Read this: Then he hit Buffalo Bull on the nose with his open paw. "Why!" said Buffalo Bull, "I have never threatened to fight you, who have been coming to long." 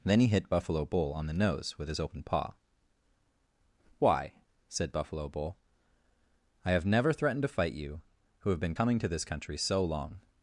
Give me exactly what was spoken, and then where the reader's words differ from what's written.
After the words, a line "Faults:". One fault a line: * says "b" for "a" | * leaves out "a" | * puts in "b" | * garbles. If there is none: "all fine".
Then he hit Buffalo Bull on the nose with his open paw. "Why!" said Buffalo Bull, "I have never threatened to fight you, who have been coming to this country so long."
Faults:
* puts in "this country so"